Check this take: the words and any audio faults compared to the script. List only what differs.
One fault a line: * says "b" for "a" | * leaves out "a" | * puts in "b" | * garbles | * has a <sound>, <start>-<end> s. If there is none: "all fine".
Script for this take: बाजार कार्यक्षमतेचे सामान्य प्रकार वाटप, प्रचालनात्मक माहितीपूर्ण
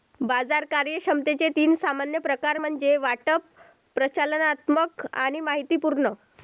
* puts in "तीन"
* puts in "म्हणजे"
* puts in "आणि"